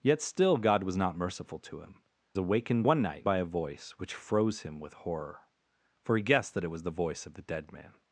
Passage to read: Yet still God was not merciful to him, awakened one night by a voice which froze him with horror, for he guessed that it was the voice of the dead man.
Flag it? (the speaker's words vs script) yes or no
no